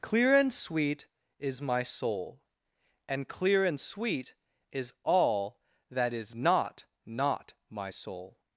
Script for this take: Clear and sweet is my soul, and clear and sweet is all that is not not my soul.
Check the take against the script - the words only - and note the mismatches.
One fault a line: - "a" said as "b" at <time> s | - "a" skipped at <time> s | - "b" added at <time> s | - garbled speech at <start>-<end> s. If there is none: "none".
none